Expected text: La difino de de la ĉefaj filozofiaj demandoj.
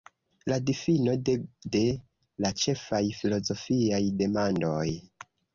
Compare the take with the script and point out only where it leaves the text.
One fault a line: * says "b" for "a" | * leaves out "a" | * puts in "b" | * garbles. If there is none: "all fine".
all fine